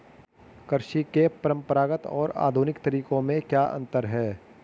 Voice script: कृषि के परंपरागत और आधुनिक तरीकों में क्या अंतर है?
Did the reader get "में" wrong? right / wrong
right